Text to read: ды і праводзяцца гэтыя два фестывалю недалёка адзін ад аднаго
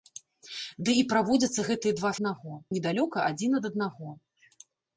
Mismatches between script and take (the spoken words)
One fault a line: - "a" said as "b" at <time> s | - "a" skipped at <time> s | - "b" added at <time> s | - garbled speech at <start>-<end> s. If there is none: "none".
- "фестывалю" said as "аднаго" at 2.2 s